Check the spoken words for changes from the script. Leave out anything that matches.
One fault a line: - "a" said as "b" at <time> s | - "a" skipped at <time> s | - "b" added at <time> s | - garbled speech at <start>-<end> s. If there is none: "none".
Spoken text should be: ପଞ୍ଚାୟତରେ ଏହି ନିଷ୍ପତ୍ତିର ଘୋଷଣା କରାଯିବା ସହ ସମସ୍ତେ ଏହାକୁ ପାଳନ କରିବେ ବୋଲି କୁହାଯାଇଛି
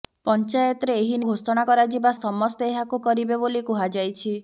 - "ନିଷ୍ପତ୍ତିର" skipped at 1.2 s
- "ସହ" skipped at 2.1 s
- "ପାଳନ" skipped at 3.0 s